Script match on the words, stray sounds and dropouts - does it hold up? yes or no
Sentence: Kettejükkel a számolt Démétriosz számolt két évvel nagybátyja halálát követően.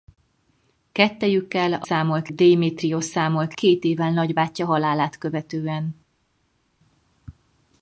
yes